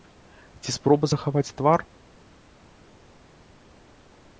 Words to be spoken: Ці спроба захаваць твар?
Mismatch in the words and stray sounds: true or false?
false